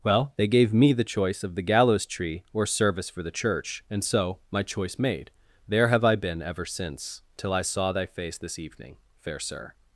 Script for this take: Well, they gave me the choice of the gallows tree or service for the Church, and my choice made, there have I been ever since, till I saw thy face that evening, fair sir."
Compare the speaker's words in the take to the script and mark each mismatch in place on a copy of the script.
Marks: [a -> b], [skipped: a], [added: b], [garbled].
Well, they gave me the choice of the gallows tree or service for the Church, and [added: so] my choice made, there have I been ever since, till I saw thy face [that -> this] evening, fair sir."